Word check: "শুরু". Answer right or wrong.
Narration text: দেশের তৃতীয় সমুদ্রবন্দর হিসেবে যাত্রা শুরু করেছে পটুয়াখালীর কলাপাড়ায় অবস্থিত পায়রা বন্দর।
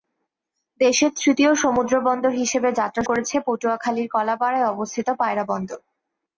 wrong